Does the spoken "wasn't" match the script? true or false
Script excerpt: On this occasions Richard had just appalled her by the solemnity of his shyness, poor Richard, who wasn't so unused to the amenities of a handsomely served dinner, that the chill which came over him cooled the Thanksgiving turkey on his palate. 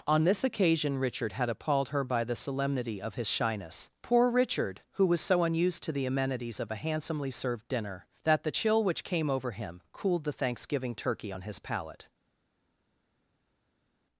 false